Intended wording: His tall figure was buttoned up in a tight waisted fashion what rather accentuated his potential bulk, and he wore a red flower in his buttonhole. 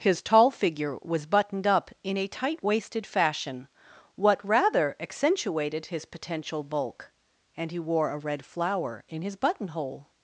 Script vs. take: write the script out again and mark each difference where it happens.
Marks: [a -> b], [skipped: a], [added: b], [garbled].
His tall figure was buttoned up in a tight waisted fashion what rather accentuated his potential bulk, and he wore a red flower in his buttonhole.